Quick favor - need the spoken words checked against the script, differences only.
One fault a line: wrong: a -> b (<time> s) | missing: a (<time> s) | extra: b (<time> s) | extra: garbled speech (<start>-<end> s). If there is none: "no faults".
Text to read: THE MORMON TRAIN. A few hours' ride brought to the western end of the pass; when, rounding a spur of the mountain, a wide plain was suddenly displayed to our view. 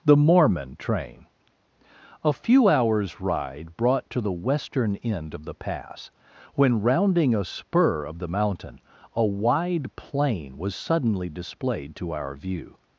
no faults